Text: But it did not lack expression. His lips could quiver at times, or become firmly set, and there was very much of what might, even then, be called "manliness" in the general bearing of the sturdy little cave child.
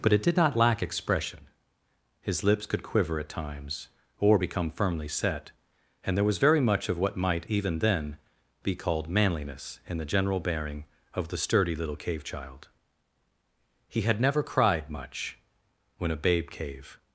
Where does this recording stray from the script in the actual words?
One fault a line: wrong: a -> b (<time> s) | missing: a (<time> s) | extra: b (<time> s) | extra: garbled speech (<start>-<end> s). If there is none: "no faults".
extra: He had never cried much when a babe cave (13.9 s)